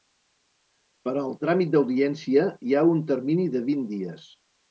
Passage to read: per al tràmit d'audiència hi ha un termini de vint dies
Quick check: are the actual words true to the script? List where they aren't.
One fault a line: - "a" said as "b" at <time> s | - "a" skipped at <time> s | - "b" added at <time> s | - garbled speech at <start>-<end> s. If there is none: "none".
none